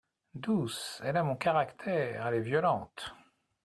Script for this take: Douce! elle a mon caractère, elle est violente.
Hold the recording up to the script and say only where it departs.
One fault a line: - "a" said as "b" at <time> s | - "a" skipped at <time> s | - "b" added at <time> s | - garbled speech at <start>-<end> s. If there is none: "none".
none